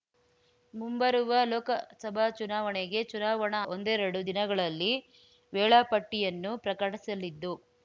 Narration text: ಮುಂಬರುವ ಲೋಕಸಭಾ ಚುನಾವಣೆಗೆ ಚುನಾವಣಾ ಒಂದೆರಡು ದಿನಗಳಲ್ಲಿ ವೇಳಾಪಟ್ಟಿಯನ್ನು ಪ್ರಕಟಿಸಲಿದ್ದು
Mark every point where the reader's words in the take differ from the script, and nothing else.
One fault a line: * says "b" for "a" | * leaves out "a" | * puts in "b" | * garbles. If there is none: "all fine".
all fine